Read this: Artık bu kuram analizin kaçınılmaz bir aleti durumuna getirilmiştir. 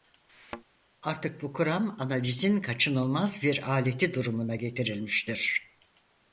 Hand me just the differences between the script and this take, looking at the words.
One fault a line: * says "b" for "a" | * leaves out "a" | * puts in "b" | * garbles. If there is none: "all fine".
all fine